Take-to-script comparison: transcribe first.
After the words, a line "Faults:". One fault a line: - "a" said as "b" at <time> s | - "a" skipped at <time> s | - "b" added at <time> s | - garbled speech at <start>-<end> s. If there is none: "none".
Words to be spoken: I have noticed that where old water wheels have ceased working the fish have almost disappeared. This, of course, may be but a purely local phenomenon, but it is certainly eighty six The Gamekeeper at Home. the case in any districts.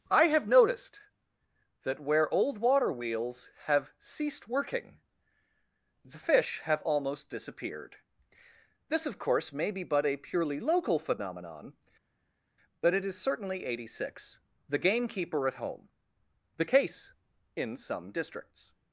I have noticed that where old water wheels have ceased working the fish have almost disappeared. This, of course, may be but a purely local phenomenon, but it is certainly eighty six The Gamekeeper at Home. the case in some districts.
Faults:
- "any" said as "some" at 17.8 s